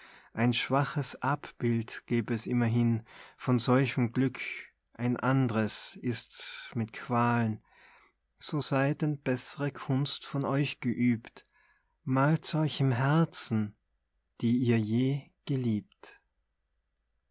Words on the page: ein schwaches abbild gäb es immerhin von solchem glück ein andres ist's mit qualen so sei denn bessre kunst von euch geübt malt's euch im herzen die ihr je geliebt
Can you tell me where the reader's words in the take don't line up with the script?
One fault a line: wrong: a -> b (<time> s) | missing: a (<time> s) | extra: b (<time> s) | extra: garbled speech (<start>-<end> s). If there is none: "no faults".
no faults